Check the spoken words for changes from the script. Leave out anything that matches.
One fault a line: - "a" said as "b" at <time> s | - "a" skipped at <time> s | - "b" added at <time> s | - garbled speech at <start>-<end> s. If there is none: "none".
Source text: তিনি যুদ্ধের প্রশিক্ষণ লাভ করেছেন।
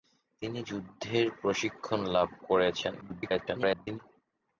- garbled speech at 3.0-4.0 s